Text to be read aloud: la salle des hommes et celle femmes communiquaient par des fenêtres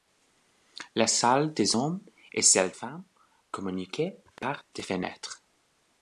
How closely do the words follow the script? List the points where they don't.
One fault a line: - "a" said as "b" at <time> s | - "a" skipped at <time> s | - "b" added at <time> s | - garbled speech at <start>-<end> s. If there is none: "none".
none